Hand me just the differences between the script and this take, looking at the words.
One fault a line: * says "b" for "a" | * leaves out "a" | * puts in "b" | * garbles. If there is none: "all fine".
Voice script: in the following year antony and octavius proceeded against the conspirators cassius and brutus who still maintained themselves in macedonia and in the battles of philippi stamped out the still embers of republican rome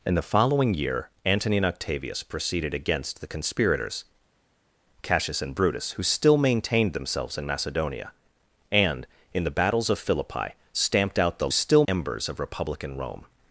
all fine